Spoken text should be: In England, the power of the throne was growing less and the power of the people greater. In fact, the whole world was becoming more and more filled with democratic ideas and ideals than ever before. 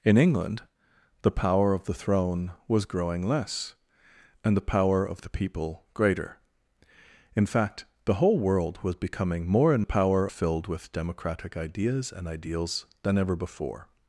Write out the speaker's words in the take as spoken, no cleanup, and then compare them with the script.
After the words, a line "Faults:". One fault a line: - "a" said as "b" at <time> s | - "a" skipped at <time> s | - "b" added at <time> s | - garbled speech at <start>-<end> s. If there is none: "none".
In England, the power of the throne was growing less and the power of the people greater. In fact, the whole world was becoming more and power filled with democratic ideas and ideals than ever before.
Faults:
- "more" said as "power" at 9.8 s